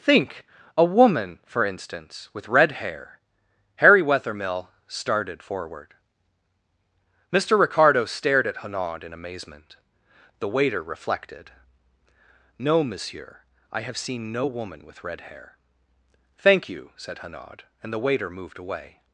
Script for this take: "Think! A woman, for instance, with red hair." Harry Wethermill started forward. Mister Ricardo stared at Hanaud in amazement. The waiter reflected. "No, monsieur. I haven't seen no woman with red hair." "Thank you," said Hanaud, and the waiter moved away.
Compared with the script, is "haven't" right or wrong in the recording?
wrong